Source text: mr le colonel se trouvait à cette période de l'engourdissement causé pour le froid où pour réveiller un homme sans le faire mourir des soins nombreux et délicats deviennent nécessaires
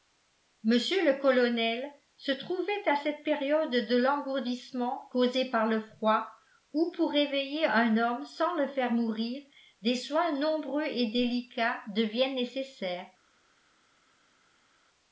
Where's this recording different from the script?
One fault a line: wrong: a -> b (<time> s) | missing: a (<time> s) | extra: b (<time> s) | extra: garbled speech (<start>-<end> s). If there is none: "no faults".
wrong: pour -> par (5.5 s)